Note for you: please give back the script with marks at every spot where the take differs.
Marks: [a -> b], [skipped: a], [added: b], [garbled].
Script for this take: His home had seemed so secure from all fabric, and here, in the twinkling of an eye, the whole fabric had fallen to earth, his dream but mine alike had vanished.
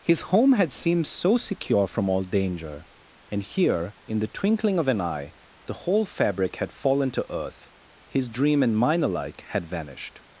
His home had seemed so secure from all [fabric, -> danger] and here, in the twinkling of an eye, the whole fabric had fallen to earth, his dream [but -> and] mine alike had vanished.